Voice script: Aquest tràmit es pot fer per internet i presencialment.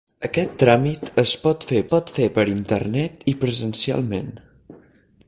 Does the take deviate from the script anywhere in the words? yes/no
yes